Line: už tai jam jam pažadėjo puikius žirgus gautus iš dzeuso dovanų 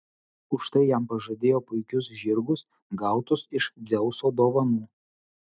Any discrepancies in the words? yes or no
yes